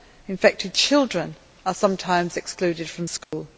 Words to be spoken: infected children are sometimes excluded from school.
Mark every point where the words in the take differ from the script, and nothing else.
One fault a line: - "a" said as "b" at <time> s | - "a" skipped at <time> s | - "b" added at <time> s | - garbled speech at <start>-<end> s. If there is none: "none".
none